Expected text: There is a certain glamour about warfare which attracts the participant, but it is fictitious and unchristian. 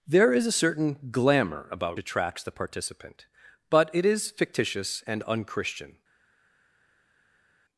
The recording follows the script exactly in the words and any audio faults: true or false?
false